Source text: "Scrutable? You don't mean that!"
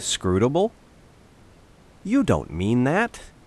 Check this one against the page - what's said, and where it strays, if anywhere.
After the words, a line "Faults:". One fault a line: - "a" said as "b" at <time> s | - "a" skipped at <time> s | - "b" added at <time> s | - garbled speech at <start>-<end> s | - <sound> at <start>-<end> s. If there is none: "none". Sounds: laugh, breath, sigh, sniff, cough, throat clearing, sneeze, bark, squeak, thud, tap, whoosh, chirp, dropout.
"Scrutable? You don't mean that!"
Faults:
none